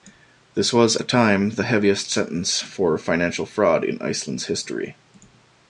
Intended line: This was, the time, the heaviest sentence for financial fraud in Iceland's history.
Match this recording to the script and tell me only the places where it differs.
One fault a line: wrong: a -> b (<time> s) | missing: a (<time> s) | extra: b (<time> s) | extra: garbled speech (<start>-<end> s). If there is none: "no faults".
no faults